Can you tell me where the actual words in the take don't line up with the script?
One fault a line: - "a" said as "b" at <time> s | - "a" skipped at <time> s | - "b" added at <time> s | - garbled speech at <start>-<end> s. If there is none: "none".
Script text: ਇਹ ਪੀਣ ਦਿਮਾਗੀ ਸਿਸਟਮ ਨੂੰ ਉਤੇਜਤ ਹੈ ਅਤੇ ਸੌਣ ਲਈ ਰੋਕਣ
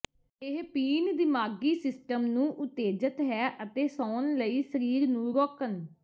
- "ਸਰੀਰ ਨੂੰ" added at 4.6 s